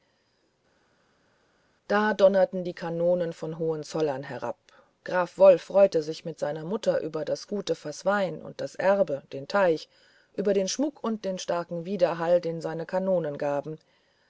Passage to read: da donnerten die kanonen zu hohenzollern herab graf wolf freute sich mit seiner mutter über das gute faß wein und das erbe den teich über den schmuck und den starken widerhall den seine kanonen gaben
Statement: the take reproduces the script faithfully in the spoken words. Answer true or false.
false